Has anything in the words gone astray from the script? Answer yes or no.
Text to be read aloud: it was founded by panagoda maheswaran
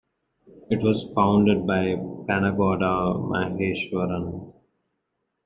no